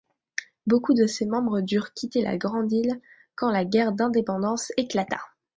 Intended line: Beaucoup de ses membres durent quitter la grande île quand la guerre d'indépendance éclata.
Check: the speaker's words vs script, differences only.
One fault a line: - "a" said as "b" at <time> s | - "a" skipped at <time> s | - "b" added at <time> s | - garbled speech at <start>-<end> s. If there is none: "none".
none